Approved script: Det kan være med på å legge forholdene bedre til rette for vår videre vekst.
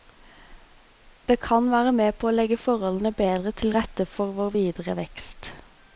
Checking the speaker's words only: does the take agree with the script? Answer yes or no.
yes